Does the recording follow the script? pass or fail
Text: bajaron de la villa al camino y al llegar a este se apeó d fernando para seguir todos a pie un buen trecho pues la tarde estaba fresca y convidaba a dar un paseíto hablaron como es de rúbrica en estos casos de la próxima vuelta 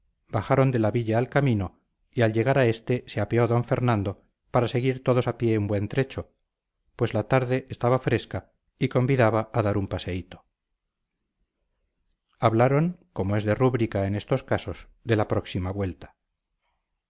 pass